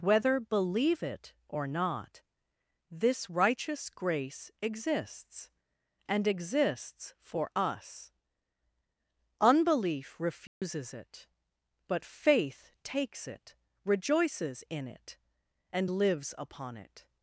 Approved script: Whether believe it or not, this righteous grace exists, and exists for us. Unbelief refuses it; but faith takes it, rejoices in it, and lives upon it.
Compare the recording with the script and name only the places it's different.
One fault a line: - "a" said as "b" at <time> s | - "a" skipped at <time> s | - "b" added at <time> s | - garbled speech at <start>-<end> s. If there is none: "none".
none